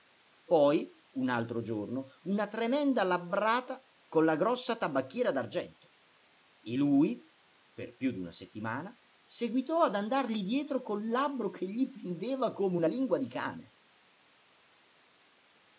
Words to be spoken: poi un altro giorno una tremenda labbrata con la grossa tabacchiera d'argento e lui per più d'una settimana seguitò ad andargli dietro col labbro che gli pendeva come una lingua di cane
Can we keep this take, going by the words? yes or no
yes